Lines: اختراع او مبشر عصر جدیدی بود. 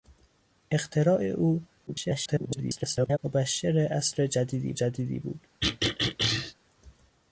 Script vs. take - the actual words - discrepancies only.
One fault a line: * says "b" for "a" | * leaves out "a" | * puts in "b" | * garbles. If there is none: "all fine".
* garbles
* puts in "جدیدی"